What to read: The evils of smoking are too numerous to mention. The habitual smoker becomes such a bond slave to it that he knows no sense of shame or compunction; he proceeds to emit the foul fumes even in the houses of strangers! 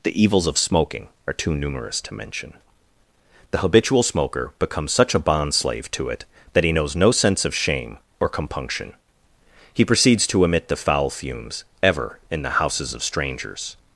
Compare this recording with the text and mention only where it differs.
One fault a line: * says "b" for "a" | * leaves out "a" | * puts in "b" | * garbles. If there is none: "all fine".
* says "ever" for "even"